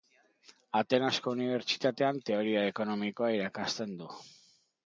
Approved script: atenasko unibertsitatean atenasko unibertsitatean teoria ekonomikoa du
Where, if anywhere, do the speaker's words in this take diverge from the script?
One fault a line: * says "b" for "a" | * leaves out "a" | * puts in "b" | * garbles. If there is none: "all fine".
* leaves out "atenasko unibertsitatean"
* puts in "irakasten"